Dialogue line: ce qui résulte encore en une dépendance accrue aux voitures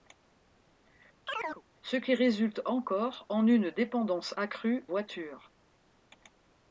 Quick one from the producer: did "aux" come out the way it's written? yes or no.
no